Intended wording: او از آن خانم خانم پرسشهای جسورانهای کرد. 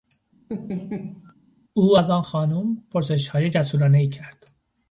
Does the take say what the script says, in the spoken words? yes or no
no